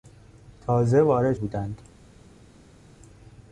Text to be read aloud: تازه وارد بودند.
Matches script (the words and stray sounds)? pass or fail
pass